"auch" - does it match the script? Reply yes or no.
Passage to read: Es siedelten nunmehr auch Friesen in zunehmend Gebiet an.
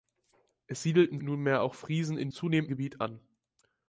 yes